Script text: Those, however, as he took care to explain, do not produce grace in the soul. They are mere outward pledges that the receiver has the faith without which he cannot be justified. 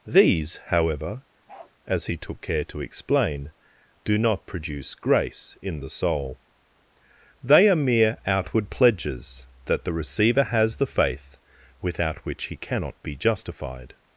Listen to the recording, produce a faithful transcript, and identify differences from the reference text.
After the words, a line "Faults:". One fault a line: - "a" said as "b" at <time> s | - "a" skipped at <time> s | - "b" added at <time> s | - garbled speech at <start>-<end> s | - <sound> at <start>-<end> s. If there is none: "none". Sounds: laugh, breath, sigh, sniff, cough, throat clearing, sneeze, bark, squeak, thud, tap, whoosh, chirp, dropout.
These, however, as he took care to explain, do not produce grace in the soul. They are mere outward pledges that the receiver has the faith without which he cannot be justified.
Faults:
- "Those" said as "These" at 0.1 s
- bark at 1.5-1.7 s